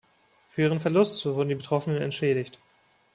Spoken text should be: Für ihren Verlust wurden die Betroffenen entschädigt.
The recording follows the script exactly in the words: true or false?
true